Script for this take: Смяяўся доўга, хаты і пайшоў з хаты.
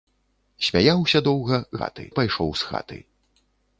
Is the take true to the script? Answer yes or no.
yes